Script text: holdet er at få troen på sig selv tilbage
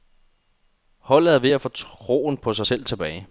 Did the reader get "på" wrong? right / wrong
right